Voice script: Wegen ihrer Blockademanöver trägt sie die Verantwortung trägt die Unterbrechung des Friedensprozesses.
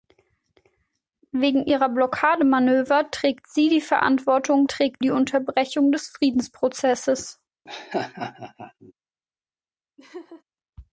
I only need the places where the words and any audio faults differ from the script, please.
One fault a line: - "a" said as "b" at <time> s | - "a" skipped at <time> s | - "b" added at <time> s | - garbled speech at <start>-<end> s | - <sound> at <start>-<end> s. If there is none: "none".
- laugh at 7.6-8.9 s
- laugh at 10.0-10.4 s